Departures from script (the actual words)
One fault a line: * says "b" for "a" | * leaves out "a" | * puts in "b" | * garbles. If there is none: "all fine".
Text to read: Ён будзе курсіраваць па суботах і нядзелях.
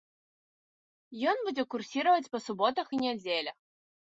all fine